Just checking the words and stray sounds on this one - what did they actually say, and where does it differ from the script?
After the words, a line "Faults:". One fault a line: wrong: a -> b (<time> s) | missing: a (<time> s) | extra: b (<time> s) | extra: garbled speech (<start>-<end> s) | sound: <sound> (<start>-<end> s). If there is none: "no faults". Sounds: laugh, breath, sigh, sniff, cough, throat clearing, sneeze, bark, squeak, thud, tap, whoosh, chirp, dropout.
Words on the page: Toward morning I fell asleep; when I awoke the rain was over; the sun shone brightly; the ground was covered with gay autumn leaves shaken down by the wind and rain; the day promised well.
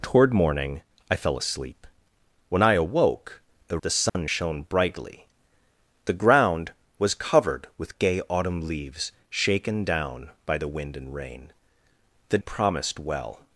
Toward morning I fell asleep; when I awoke the; the sun shone brightly; the ground was covered with gay autumn leaves shaken down by the wind and rain; the promised well.
Faults:
missing: rain was over (3.8 s)
sound: dropout (4.1-4.1 s)
missing: day (12.4 s)